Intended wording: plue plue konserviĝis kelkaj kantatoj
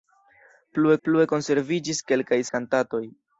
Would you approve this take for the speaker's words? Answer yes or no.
yes